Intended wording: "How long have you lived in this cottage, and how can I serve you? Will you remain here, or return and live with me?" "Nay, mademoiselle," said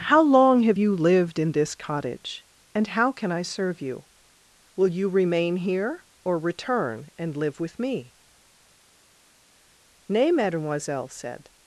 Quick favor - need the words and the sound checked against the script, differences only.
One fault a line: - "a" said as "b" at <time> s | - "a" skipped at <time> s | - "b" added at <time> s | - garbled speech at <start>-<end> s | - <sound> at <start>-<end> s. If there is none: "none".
none